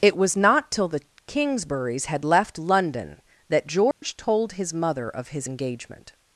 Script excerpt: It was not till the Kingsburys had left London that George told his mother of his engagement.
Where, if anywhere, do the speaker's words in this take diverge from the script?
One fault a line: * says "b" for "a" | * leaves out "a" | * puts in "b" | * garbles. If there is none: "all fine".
all fine